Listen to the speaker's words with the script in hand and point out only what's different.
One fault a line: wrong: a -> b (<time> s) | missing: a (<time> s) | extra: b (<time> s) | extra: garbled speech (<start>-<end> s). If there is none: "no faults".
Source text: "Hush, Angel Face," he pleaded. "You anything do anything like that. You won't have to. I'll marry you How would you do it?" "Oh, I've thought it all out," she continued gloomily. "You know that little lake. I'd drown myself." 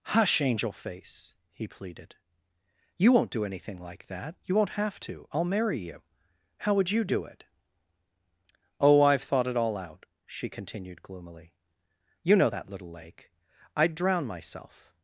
wrong: anything -> won't (3.1 s)